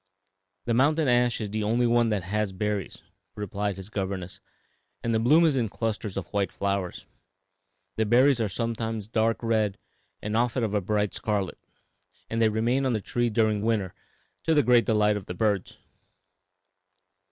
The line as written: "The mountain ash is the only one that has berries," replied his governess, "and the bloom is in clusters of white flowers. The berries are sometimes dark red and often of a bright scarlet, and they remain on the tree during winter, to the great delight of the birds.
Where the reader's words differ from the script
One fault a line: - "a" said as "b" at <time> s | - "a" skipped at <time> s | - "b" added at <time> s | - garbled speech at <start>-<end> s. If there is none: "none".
none